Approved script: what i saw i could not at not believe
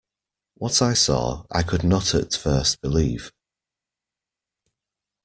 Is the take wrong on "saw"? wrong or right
right